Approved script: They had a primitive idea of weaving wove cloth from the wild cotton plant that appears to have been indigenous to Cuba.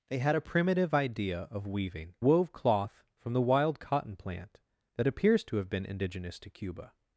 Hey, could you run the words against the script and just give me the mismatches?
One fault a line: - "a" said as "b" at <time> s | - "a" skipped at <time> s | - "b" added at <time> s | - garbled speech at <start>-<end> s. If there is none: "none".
none